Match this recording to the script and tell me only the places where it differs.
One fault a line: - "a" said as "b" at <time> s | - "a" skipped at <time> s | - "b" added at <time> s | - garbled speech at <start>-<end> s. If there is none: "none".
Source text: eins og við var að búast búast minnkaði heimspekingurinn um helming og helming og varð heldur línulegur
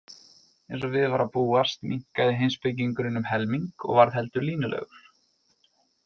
- "búast" skipped at 1.8 s
- "helming og" skipped at 4.0 s